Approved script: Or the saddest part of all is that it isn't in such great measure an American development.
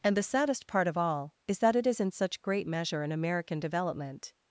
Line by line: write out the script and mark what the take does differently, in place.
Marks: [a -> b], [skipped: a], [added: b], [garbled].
[Or -> And] the saddest part of all is that it [isn't -> is] in such great measure an American development.